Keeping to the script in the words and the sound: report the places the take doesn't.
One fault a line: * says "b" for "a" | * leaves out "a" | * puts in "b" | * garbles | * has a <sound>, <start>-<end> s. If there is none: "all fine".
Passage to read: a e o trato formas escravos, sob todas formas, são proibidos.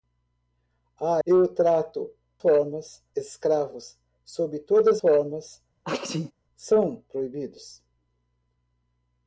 * has a sneeze, 5.8-6.3 s